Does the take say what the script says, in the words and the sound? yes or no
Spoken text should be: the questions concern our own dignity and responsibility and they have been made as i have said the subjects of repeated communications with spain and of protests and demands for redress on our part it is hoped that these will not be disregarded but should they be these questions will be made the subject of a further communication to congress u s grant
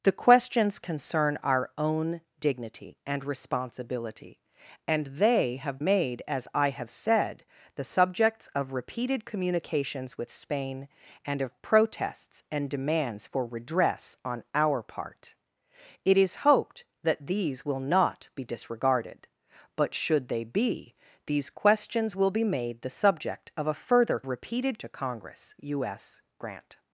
no